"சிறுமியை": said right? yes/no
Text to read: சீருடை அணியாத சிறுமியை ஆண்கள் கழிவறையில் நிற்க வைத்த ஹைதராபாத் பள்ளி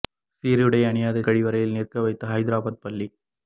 no